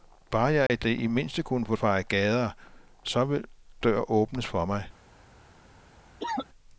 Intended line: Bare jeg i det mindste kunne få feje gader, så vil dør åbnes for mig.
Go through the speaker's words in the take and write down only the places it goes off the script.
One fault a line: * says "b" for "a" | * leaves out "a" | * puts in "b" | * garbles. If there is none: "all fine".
all fine